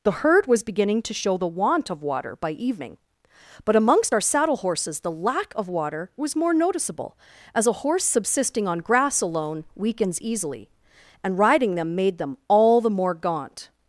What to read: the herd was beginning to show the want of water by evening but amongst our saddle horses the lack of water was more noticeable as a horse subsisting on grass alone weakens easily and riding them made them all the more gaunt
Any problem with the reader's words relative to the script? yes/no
no